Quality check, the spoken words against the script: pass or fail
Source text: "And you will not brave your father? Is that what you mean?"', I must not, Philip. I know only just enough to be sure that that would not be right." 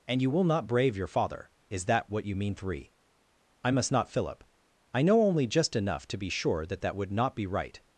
fail